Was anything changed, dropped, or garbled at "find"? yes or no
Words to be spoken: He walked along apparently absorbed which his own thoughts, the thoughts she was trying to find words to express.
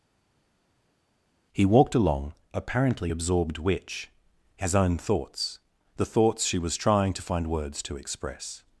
no